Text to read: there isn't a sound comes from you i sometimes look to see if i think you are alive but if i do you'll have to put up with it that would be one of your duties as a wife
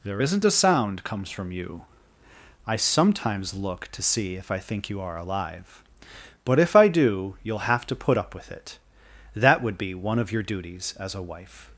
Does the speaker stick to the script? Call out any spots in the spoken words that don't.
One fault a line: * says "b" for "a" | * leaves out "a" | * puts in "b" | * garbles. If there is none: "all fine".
all fine